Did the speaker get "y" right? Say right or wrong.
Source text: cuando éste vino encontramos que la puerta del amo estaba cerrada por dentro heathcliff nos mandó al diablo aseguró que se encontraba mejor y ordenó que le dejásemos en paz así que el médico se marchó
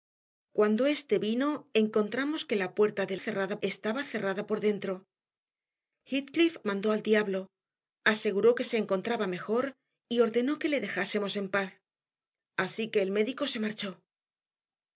right